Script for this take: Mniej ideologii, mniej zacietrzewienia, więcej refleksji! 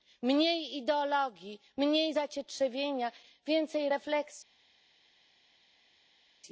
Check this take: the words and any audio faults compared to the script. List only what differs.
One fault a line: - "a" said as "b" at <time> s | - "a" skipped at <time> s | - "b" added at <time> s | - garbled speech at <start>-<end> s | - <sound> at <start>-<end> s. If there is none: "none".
none